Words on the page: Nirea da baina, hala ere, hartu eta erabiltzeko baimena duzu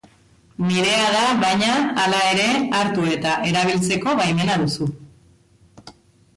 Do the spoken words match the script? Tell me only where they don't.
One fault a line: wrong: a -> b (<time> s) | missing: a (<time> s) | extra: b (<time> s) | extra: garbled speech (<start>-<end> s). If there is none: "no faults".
no faults